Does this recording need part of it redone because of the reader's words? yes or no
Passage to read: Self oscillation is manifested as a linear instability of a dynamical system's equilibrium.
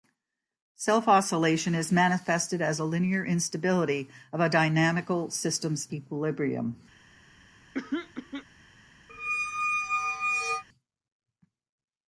no